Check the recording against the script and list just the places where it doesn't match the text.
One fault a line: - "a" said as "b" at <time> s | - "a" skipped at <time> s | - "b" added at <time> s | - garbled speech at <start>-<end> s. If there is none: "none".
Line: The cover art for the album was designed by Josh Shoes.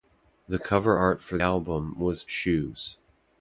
- "the" skipped at 1.4 s
- "designed by Josh" skipped at 2.2 s